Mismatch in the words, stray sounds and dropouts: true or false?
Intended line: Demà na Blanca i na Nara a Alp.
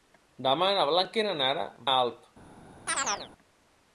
true